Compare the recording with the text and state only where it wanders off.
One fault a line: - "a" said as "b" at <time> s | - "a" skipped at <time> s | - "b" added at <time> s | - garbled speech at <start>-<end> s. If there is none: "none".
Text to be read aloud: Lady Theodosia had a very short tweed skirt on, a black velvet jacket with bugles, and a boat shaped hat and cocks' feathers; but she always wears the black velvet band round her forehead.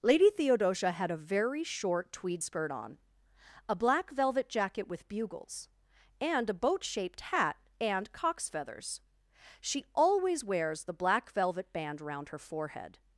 - "but" skipped at 9.0 s